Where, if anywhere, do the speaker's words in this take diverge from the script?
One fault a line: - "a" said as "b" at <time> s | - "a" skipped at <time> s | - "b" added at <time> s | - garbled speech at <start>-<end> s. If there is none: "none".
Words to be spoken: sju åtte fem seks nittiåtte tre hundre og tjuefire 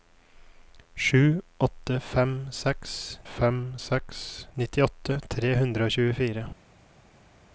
- "fem seks" added at 3.2 s